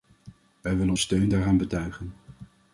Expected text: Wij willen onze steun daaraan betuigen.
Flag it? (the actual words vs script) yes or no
yes